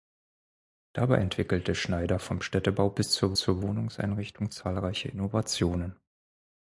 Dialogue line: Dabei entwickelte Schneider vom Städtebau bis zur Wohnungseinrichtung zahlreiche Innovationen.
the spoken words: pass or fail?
fail